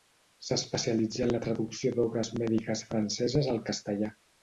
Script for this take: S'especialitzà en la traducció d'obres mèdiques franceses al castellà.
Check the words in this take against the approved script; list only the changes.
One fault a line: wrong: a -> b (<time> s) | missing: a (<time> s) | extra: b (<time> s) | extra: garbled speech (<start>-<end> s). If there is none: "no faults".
no faults